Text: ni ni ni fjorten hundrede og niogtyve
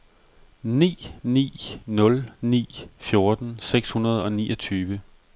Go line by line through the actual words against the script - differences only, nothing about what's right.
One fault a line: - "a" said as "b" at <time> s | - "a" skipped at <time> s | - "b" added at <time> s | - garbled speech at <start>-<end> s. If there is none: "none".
- "nul" added at 1.9 s
- "seks" added at 3.6 s